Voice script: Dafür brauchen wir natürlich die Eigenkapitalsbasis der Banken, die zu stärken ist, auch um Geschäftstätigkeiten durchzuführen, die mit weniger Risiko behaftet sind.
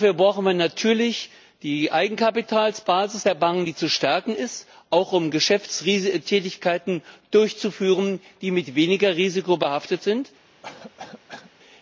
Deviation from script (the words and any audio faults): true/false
true